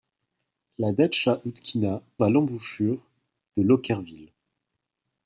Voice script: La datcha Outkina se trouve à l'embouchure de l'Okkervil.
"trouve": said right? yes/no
no